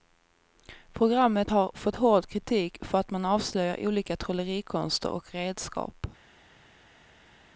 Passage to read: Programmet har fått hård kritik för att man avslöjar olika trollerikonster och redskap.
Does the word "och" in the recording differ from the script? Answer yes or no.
no